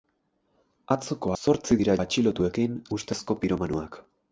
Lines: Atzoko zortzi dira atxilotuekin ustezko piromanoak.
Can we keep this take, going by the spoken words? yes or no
yes